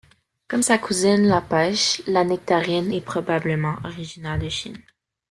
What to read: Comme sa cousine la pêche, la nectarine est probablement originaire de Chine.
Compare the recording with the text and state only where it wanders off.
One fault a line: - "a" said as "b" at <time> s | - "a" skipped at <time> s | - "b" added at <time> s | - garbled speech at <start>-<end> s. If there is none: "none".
none